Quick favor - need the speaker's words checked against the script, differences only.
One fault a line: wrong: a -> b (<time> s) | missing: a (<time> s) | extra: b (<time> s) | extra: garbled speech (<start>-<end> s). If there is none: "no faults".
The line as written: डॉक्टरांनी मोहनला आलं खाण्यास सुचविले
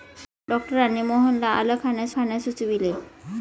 extra: खाण्यास (2.2 s)